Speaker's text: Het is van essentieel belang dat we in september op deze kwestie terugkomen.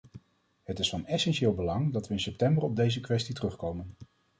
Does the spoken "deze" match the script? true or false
true